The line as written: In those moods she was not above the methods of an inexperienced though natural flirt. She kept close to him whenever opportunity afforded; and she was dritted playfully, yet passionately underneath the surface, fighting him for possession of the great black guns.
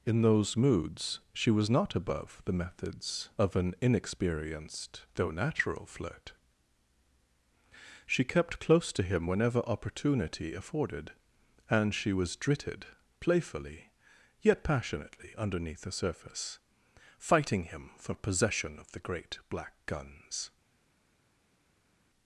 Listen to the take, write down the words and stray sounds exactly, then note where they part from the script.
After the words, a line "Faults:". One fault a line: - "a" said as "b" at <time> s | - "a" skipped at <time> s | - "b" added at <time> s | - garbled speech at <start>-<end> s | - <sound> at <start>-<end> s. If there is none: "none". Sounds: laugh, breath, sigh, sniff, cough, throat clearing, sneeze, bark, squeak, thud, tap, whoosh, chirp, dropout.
In those moods she was not above the methods of an inexperienced though natural flirt. She kept close to him whenever opportunity afforded; and she was dritted playfully, yet passionately underneath the surface, fighting him for possession of the great black guns.
Faults:
none